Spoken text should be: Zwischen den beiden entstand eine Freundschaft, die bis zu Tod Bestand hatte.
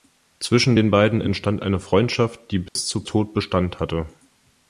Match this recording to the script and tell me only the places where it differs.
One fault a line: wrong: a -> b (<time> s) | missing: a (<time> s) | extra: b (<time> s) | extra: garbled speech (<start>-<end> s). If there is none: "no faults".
no faults